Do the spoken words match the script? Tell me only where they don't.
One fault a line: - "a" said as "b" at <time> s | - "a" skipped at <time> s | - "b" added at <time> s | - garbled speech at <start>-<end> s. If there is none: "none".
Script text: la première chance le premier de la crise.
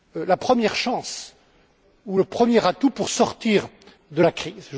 - "ou" added at 2.0 s
- "atout pour sortir" added at 2.7 s